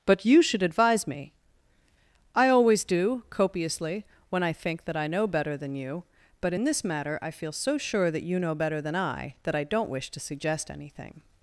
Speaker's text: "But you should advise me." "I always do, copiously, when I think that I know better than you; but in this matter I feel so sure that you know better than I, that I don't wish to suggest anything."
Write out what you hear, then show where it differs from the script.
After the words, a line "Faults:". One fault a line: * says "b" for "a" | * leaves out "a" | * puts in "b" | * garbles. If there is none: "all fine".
"But you should advise me." "I always do, copiously, when I think that I know better than you; but in this matter I feel so sure that you know better than I, that I don't wish to suggest anything."
Faults:
all fine